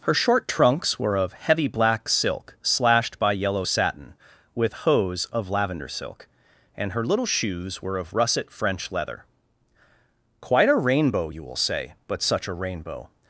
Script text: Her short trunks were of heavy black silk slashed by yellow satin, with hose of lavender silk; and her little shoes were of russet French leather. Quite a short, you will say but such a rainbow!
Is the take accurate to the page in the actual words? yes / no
no